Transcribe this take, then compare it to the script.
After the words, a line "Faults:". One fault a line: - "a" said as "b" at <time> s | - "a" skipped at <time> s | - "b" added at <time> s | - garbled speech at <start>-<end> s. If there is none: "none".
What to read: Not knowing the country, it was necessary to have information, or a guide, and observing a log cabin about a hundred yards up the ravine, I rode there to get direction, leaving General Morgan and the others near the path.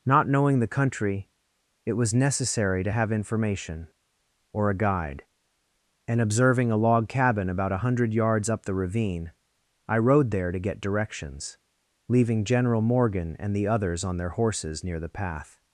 Not knowing the country, it was necessary to have information, or a guide, and observing a log cabin about a hundred yards up the ravine, I rode there to get directions, leaving General Morgan and the others on their horses near the path.
Faults:
- "direction" said as "directions" at 10.8 s
- "on their horses" added at 14.0 s